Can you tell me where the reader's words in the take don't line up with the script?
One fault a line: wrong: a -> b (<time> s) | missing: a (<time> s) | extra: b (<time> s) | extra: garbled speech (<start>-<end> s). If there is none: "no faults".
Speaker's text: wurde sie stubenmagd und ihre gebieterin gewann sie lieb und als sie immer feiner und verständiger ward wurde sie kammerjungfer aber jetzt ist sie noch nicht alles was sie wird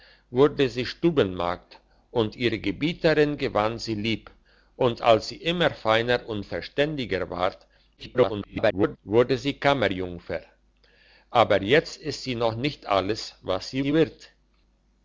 extra: garbled speech (8.0-9.0 s)
extra: sie (13.8 s)